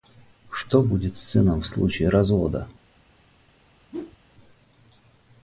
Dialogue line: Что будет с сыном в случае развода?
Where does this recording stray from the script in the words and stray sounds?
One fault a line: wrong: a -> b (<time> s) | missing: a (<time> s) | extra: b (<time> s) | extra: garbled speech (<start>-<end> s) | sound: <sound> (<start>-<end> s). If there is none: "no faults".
sound: whoosh (3.9-4.2 s)